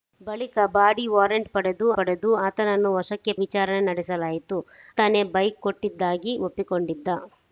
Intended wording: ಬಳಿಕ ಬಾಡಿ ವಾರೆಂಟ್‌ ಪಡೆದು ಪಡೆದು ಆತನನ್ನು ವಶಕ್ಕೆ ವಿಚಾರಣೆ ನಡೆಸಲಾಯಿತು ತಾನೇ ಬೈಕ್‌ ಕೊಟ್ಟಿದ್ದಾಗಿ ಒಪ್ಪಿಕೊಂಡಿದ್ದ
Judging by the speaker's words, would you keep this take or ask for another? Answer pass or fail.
pass